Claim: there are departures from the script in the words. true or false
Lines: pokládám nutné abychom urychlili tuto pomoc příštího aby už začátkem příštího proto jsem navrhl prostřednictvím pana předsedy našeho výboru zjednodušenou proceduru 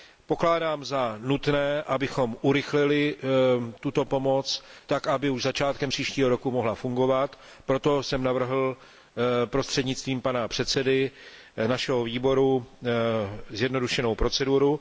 true